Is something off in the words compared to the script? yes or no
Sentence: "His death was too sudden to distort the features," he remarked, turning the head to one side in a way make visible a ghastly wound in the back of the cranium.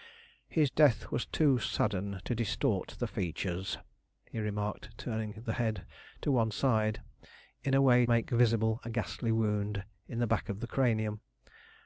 no